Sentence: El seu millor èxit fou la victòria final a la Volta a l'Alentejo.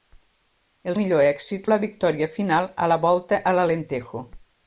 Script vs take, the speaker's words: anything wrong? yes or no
yes